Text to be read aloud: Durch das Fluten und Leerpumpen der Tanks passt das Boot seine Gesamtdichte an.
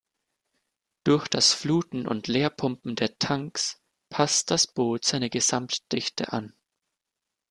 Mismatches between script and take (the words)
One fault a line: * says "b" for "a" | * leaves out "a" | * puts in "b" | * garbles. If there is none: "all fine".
all fine